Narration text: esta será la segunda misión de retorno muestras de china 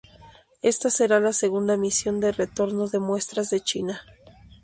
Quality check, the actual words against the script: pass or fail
fail